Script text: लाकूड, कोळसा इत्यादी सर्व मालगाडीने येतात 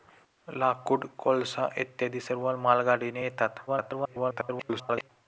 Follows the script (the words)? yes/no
no